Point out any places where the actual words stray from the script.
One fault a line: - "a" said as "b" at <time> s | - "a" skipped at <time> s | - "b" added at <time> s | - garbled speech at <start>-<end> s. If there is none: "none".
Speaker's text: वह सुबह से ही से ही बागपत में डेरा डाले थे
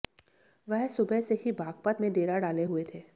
- "से ही" skipped at 1.5 s
- "हुए" added at 2.6 s